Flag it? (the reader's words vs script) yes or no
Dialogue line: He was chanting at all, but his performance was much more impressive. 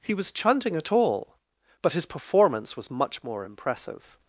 no